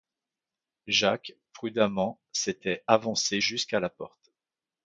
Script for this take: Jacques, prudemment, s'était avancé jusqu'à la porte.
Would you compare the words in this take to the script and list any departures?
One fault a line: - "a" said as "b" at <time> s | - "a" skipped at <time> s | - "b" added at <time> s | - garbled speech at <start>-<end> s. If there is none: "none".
none